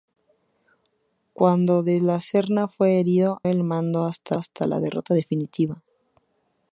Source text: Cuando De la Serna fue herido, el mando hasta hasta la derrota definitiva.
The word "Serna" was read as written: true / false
true